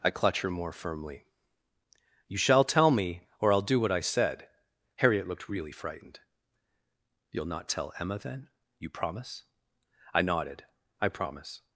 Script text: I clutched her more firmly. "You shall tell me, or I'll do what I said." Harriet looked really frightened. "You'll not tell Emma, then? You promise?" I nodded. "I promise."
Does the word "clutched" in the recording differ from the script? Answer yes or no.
yes